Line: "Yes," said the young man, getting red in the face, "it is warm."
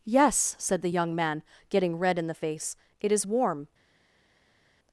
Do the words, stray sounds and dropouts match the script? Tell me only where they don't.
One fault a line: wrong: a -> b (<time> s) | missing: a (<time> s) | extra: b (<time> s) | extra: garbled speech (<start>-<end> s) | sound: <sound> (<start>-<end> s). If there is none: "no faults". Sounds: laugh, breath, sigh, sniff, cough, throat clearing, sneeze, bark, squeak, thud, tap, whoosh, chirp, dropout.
no faults